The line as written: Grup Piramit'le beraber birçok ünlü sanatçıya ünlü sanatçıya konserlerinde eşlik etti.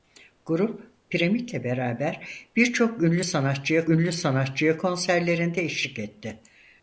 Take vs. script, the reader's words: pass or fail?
pass